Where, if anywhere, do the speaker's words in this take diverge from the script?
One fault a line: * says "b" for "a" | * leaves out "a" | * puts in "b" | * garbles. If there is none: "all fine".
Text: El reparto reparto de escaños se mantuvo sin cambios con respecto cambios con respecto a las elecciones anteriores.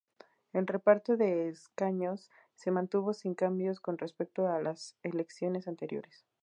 * leaves out "reparto"
* leaves out "cambios con respecto"